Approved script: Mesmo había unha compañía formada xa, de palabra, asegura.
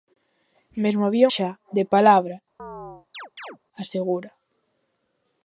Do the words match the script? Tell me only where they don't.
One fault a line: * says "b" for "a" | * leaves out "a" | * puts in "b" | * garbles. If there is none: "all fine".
* leaves out "unha compañía formada"